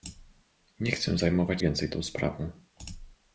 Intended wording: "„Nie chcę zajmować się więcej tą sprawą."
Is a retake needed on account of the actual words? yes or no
yes